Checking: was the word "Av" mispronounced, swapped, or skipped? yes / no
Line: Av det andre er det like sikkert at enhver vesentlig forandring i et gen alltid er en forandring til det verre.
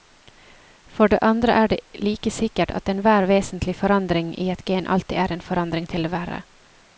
yes